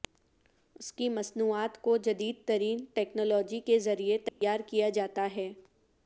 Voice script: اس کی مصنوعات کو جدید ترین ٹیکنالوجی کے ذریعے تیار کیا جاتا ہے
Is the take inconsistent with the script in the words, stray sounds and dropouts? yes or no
yes